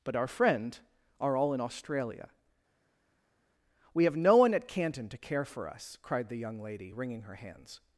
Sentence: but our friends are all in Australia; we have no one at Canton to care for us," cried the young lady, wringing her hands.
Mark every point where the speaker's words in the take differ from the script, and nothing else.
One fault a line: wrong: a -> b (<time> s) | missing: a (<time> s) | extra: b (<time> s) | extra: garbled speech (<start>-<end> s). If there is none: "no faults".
wrong: friends -> friend (0.3 s)